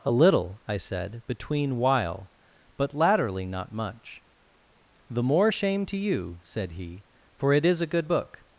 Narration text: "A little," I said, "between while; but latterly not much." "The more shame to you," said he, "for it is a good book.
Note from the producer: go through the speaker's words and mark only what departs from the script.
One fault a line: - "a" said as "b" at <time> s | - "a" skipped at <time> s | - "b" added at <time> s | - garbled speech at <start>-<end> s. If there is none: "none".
none